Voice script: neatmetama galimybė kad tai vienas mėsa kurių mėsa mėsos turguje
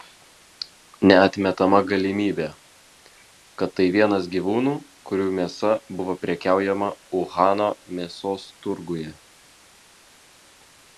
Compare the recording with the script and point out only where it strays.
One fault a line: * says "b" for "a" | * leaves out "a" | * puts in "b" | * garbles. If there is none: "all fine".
* says "gyvūnų" for "mėsa"
* puts in "buvo prekiaujama uhano"